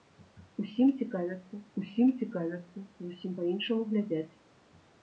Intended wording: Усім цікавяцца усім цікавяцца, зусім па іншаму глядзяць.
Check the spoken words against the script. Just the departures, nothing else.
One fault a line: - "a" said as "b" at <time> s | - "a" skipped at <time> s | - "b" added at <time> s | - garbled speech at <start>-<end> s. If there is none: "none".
none